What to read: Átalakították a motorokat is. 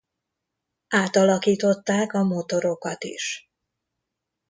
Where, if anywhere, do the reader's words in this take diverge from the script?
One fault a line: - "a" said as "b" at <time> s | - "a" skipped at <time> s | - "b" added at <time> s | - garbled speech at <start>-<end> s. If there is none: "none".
none